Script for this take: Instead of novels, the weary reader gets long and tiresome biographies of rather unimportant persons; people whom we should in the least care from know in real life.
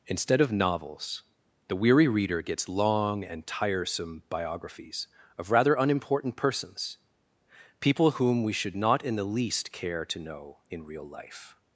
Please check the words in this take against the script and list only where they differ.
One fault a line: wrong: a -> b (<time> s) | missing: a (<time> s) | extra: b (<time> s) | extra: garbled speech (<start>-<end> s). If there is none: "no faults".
extra: not (8.8 s)
wrong: from -> to (10.0 s)